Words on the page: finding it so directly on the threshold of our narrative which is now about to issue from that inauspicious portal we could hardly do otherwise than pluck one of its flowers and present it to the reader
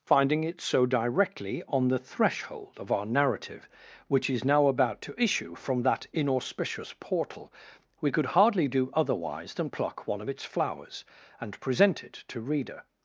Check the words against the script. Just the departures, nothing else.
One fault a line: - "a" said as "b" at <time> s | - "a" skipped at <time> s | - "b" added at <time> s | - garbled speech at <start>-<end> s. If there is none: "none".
- "the" skipped at 12.4 s